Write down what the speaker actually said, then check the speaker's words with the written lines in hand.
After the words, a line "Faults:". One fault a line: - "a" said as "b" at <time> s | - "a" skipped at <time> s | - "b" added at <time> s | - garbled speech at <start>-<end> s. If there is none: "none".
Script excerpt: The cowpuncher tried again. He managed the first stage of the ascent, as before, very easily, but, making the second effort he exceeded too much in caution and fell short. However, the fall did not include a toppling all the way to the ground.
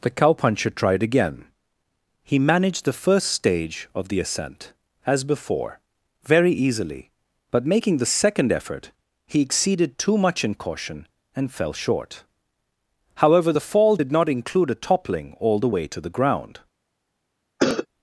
The cowpuncher tried again. He managed the first stage of the ascent, as before, very easily, but, making the second effort he exceeded too much in caution and fell short. However, the fall did not include a toppling all the way to the ground.
Faults:
none